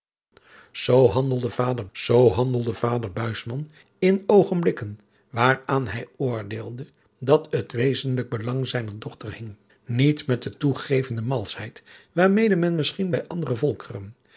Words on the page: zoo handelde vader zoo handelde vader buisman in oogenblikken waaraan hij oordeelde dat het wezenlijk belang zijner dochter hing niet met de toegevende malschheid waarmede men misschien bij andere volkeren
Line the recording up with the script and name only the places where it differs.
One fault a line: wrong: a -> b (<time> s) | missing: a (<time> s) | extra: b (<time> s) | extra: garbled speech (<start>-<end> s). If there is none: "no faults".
no faults